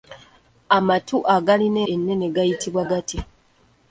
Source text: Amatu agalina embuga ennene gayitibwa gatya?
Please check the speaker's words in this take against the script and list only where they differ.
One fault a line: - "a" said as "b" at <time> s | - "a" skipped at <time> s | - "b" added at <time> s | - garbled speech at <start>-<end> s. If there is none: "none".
- "embuga" skipped at 1.8 s